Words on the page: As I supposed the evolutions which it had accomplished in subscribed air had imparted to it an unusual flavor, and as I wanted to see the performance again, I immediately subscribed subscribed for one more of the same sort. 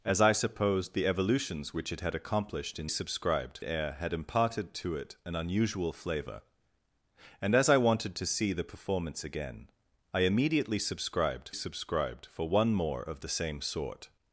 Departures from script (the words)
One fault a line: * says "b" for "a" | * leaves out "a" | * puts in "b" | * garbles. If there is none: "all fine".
all fine